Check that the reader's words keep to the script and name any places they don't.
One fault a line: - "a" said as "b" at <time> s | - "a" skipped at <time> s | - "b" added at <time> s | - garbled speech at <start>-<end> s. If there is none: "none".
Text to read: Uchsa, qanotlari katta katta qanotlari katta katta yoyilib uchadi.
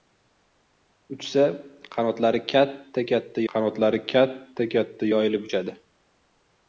none